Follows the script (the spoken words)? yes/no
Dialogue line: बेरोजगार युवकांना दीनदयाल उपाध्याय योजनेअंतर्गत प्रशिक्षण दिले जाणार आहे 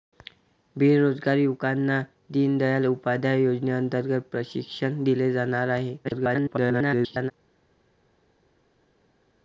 no